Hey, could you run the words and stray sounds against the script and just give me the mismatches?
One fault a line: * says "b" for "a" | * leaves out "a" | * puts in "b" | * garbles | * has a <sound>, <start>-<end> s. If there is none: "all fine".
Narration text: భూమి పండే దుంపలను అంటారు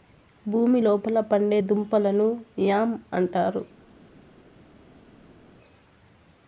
* puts in "లోపల"
* puts in "యామ్"